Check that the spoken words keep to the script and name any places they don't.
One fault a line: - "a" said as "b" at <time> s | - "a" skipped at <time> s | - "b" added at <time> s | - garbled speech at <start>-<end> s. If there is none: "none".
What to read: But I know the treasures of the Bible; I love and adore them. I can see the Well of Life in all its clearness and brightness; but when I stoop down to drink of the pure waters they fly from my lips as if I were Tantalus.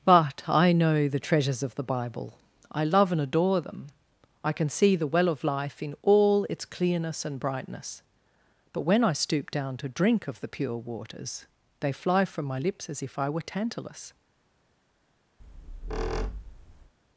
none